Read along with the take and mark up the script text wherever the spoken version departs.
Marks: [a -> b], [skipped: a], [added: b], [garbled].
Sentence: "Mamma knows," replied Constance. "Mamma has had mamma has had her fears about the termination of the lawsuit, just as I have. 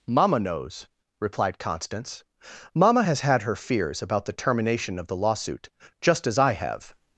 "Mamma knows," replied Constance. "Mamma has had [skipped: mamma has had] her fears about the termination of the lawsuit, just as I have.